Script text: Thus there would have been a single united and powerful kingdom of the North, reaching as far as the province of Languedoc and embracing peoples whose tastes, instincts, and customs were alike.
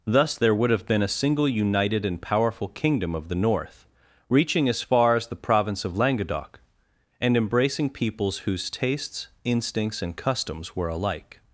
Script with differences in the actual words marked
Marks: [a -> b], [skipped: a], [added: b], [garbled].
Thus there would have been a single united and powerful kingdom of the North, reaching as far as the province of Languedoc and embracing peoples whose tastes, instincts, and customs were alike.